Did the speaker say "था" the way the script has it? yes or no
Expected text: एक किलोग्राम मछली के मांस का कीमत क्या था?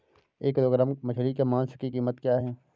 no